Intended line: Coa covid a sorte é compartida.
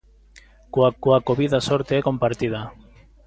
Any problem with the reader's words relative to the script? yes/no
yes